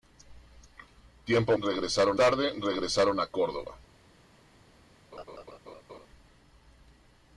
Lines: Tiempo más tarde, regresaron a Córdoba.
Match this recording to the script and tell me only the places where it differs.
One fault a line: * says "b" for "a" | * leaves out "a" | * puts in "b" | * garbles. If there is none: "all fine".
* says "regresaron" for "más"